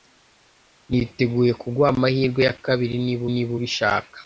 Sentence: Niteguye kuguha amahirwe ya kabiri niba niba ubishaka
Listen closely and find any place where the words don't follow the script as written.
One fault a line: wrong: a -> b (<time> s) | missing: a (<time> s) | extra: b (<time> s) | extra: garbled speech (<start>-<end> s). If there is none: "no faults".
no faults